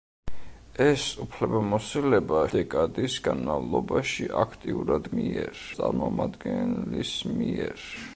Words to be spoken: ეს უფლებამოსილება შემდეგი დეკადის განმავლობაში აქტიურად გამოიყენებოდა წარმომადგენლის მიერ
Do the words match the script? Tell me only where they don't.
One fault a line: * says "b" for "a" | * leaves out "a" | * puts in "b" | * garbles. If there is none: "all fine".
* leaves out "შემდეგი"
* says "მიერ" for "გამოიყენებოდა"